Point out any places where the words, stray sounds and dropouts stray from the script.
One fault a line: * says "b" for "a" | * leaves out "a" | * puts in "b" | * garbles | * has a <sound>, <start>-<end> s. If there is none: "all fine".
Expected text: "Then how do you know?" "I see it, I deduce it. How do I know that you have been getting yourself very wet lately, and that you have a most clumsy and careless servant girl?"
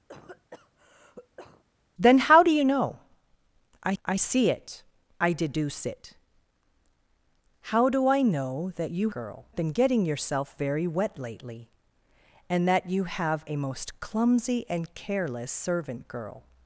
* has a cough, 0.1-1.6 s
* puts in "I"
* says "girl" for "have"